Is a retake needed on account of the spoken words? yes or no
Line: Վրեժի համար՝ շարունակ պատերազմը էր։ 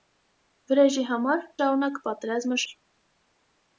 no